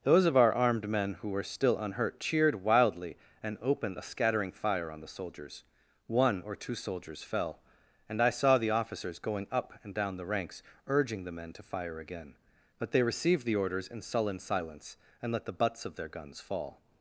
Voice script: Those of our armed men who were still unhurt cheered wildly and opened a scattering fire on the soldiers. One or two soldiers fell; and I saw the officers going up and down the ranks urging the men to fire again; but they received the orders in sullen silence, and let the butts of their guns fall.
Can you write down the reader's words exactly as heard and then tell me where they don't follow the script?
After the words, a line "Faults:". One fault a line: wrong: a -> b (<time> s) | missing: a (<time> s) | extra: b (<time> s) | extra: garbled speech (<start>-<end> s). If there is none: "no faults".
Those of our armed men who were still unhurt cheered wildly and opened a scattering fire on the soldiers. One or two soldiers fell; and I saw the officers going up and down the ranks urging the men to fire again; but they received the orders in sullen silence, and let the butts of their guns fall.
Faults:
no faults